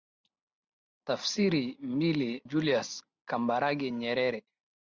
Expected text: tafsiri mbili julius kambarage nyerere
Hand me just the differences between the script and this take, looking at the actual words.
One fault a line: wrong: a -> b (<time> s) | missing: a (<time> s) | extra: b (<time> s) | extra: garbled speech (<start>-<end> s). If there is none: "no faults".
no faults